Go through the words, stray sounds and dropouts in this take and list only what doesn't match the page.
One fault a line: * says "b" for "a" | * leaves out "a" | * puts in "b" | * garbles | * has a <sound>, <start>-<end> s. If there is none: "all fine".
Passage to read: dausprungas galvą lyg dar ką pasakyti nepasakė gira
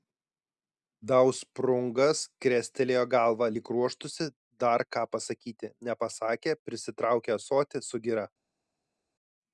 * puts in "krestelėjo"
* puts in "ruoštųsi"
* puts in "prisitraukė ąsotį su"